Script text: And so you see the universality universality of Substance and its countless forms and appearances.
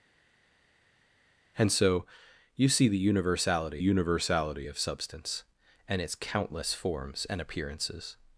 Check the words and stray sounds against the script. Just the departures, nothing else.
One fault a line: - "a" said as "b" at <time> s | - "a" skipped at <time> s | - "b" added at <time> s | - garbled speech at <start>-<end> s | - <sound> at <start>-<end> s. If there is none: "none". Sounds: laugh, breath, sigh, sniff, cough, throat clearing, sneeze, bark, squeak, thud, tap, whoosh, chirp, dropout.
none